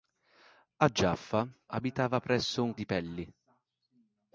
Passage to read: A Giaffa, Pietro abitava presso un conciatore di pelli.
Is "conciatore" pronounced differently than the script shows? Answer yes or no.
yes